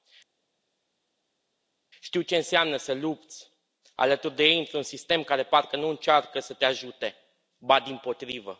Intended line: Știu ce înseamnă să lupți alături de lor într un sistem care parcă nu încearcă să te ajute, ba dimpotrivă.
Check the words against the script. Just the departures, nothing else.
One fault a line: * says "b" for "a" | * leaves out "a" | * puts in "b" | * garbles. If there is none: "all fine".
* says "ei" for "lor"